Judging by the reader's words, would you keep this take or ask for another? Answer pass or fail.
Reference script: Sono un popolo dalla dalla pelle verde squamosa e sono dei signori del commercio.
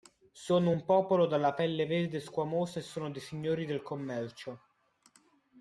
fail